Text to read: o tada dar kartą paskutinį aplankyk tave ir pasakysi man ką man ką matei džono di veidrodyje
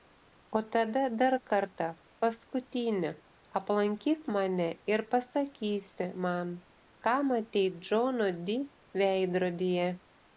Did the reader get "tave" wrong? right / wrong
wrong